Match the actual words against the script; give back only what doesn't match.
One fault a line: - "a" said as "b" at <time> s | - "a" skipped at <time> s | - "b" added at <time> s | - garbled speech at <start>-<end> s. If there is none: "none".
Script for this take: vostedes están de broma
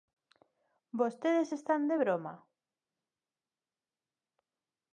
none